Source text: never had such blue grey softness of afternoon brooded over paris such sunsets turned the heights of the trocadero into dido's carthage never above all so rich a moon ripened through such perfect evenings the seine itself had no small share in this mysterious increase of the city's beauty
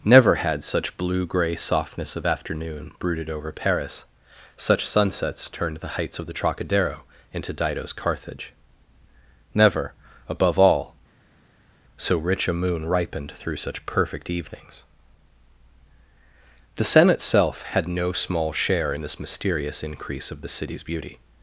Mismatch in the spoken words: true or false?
false